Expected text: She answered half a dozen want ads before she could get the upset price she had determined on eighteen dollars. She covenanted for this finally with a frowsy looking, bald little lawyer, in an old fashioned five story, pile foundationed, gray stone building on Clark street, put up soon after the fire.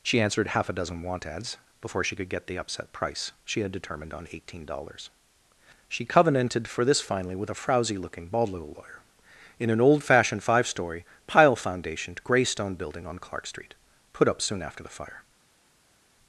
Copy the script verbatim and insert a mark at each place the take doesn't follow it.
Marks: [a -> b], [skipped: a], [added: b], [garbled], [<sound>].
She answered half a dozen want ads before she could get the upset price she had determined on eighteen dollars. She covenanted for this finally with a frowsy looking, bald little lawyer, in an old fashioned five story, pile foundationed, gray stone building on Clark street, put up soon after the fire.